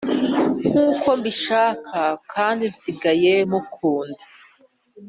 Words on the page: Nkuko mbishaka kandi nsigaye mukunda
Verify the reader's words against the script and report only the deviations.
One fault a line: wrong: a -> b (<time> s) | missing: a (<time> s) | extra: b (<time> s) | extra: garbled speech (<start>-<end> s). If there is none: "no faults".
no faults